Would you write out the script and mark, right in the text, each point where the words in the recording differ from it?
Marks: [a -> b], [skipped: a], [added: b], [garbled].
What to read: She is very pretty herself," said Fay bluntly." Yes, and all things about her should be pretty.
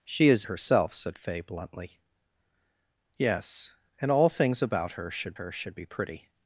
She is [skipped: very pretty] herself," said Fay bluntly." Yes, and all things about her should [added: her should] be pretty.